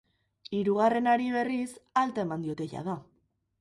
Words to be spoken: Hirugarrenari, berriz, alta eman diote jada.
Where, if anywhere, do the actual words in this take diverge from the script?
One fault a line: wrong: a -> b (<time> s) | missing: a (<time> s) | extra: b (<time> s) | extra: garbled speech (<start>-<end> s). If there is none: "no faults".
no faults